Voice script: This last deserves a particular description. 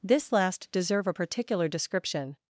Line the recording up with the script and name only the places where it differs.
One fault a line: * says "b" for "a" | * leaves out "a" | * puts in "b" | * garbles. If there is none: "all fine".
* says "deserve" for "deserves"